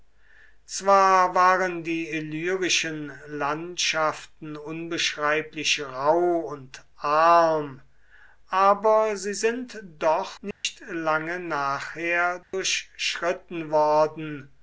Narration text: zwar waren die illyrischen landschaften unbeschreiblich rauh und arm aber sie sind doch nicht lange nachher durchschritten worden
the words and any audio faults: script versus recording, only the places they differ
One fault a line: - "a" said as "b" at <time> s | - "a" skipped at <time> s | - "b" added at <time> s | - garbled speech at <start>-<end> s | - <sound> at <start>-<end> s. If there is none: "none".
- dropout at 10.5-10.6 s
- dropout at 12.4-12.5 s